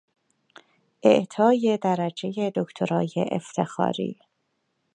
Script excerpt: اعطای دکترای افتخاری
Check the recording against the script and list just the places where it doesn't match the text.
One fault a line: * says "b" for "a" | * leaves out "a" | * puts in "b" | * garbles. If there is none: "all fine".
* puts in "درجهی"